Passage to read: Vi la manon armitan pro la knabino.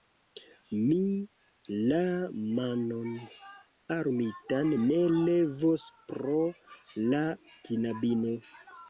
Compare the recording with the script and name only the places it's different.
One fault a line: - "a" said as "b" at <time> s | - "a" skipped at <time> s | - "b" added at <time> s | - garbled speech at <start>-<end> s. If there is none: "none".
- "Vi" said as "Mi" at 0.8 s
- "ne levos" added at 4.8 s